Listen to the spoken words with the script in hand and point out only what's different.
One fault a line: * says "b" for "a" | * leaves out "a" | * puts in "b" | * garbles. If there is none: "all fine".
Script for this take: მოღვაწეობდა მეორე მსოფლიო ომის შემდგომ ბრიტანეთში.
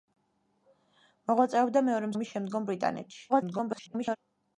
* leaves out "მსოფლიო"
* garbles